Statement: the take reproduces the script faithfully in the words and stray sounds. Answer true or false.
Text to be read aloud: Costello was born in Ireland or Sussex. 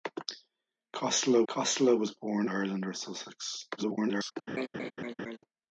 false